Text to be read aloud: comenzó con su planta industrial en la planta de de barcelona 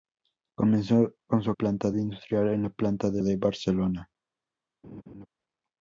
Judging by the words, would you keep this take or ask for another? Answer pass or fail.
pass